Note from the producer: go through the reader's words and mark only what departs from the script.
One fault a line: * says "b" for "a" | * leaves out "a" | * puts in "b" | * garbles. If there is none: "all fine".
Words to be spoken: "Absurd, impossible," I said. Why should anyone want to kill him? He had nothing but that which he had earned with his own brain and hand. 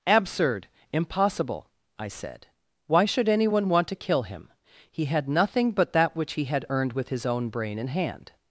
all fine